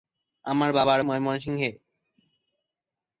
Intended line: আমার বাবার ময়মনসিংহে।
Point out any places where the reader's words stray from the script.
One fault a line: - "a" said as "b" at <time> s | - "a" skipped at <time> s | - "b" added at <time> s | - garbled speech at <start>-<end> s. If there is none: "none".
none